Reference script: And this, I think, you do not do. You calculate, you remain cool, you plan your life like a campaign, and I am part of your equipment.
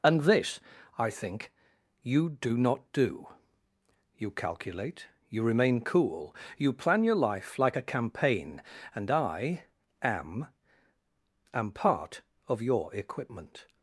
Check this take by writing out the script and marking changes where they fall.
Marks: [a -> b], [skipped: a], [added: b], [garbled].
And this, I think, you do not do. You calculate, you remain cool, you plan your life like a campaign, and I am [added: am] part of your equipment.